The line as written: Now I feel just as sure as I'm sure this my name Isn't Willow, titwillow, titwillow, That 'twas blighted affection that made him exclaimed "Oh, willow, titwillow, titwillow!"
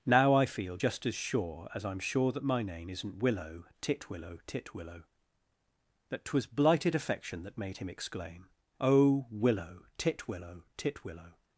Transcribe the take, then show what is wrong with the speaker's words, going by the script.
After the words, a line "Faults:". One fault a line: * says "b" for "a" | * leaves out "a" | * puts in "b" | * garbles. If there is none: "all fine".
Now I feel just as sure as I'm sure that my name Isn't Willow, titwillow, titwillow, That 'twas blighted affection that made him exclaim "Oh, willow, titwillow, titwillow!"
Faults:
* says "that" for "this"
* says "exclaim" for "exclaimed"